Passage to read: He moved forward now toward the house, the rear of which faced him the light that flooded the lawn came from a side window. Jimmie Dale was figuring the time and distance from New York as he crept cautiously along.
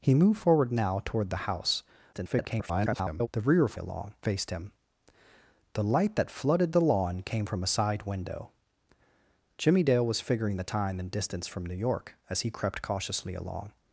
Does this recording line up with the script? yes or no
no